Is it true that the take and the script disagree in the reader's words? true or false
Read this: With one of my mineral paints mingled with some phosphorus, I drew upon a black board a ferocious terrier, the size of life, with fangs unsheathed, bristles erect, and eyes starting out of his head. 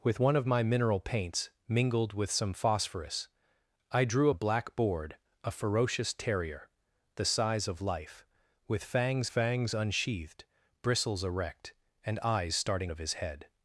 true